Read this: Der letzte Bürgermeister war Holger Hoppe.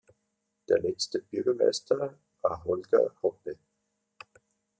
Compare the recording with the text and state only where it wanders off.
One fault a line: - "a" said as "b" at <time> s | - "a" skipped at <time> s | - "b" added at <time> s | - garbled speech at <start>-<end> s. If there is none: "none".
none